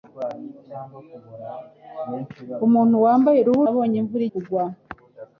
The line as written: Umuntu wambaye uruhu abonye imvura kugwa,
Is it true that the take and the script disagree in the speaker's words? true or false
false